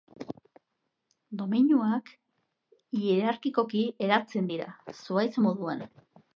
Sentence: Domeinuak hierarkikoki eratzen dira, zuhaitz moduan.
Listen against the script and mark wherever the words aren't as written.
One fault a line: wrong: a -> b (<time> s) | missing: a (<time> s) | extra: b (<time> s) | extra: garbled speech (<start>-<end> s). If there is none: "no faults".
no faults